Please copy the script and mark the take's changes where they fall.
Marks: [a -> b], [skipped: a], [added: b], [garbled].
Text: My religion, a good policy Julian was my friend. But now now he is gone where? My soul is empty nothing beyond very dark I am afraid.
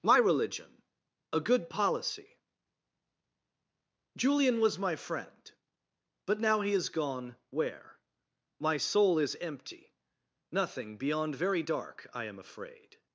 My religion, a good policy Julian was my friend. But now [skipped: now] he is gone where? My soul is empty nothing beyond very dark I am afraid.